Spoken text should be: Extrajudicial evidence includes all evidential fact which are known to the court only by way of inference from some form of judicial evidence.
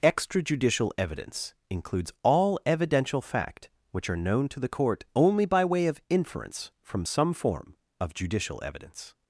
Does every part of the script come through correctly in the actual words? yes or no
yes